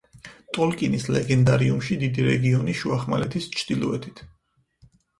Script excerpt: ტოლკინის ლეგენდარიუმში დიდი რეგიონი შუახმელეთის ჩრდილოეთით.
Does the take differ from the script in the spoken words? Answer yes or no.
no